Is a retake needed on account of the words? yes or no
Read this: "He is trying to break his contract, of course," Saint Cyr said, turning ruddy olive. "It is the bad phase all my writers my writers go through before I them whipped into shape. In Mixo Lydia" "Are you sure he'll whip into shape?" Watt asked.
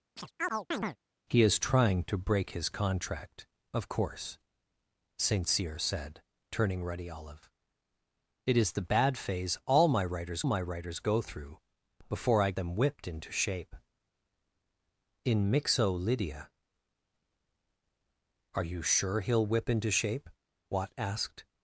no